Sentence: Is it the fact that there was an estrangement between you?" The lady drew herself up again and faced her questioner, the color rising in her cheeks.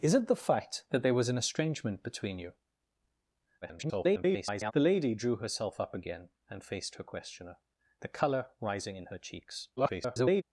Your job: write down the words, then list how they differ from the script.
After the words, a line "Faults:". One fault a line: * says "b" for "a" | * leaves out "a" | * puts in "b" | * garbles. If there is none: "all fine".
Is it the fact that there was an estrangement between you?" [garbled] The lady drew herself up again and faced her questioner, the color rising in her cheeks. [garbled]
Faults:
* garbles
* garbles